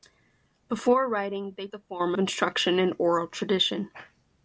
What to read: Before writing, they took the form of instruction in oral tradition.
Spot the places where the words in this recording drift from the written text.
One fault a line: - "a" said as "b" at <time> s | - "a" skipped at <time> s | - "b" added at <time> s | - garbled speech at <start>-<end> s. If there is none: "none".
- "took" skipped at 1.7 s
- "of" skipped at 2.2 s